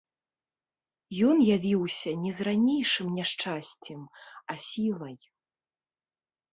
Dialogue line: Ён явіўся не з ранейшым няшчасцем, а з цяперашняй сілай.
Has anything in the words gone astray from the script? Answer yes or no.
yes